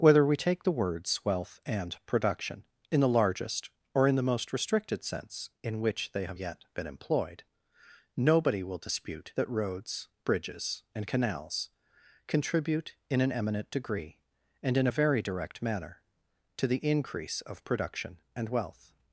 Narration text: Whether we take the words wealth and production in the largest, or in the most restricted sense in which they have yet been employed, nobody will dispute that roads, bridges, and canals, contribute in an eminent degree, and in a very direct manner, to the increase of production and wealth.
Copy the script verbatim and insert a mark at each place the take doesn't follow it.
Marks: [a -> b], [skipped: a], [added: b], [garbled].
Whether we take the words wealth and production in the largest, or in the most restricted sense in which they have yet been employed, nobody will dispute that roads, bridges, and canals, contribute in an eminent degree, and in a very direct manner, to the increase of production and wealth.